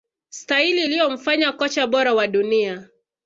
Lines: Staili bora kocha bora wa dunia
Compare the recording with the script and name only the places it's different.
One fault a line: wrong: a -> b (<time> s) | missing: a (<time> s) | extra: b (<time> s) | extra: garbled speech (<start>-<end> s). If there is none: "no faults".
wrong: bora -> iliyomfanya (0.8 s)